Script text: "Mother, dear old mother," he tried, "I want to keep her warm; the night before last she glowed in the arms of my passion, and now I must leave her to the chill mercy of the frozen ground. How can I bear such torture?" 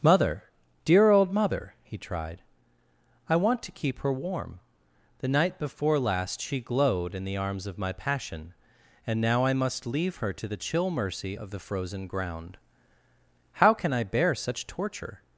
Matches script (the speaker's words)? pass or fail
pass